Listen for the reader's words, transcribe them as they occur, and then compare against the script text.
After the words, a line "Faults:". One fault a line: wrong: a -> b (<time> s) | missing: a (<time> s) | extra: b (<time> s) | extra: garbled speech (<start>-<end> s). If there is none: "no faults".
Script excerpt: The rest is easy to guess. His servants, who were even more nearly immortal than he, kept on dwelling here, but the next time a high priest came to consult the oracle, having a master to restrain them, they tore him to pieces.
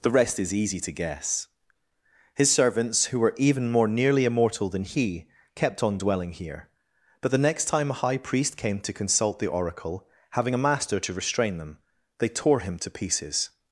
The rest is easy to guess. His servants, who were even more nearly immortal than he, kept on dwelling here, but the next time a high priest came to consult the oracle, having a master to restrain them, they tore him to pieces.
Faults:
no faults